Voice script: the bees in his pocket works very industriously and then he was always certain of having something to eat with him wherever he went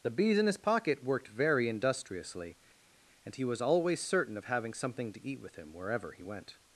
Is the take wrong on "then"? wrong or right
wrong